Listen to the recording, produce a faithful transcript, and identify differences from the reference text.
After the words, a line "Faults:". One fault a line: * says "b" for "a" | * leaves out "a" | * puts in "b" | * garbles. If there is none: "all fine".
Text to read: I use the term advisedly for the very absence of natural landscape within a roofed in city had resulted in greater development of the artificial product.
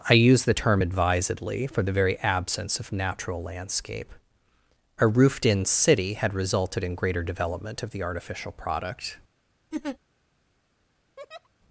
I use the term advisedly for the very absence of natural landscape a roofed in city had resulted in greater development of the artificial product.
Faults:
* leaves out "within"